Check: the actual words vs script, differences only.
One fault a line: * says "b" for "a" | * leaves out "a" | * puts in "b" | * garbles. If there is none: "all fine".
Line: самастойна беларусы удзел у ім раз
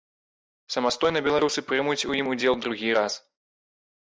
* says "прымуць" for "удзел"
* puts in "удзел другі"